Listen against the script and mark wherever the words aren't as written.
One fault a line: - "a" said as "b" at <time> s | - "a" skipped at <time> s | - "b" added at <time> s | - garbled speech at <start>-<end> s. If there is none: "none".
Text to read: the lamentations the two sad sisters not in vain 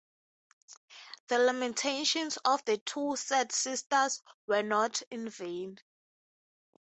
- "of" added at 2.5 s
- "were" added at 4.5 s